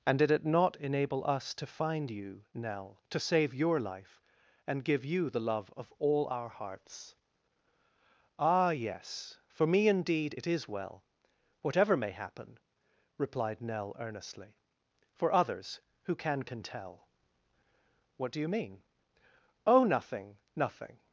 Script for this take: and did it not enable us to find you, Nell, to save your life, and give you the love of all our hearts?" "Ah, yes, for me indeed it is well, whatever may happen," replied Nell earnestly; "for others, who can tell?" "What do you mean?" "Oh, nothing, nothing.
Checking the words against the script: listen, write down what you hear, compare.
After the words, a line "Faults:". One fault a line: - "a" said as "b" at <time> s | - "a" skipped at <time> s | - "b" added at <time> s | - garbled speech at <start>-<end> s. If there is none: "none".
and did it not enable us to find you, Nell, to save your life, and give you the love of all our hearts?" "Ah, yes, for me indeed it is well, whatever may happen," replied Nell earnestly; "for others, who can can tell?" "What do you mean?" "Oh, nothing, nothing.
Faults:
- "can" added at 16.4 s